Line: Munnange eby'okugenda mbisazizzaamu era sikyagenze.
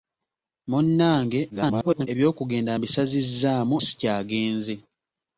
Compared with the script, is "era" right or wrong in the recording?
wrong